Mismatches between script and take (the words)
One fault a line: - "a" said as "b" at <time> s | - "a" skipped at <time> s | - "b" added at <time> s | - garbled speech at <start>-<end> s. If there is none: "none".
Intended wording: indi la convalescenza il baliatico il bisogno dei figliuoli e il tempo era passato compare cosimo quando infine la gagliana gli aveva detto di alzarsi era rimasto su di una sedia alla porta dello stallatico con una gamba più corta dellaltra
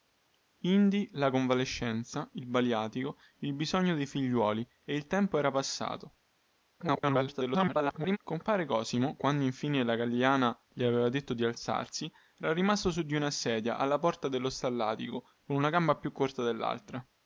- garbled speech at 6.8-8.2 s